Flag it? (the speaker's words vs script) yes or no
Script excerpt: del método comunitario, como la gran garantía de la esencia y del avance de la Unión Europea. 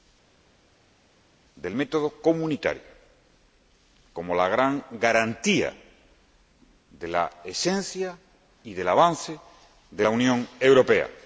no